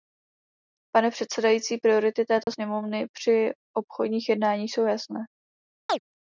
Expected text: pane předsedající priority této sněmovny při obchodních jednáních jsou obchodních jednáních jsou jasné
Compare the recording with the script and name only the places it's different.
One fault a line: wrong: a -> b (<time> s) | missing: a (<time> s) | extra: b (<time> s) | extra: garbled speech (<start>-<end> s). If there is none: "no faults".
missing: obchodních jednáních jsou (4.9 s)